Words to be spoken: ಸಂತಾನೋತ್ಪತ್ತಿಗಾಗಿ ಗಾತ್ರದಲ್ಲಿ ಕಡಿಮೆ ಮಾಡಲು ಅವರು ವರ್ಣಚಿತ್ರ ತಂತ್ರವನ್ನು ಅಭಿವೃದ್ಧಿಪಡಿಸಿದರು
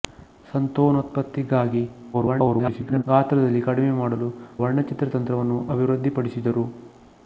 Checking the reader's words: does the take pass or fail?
fail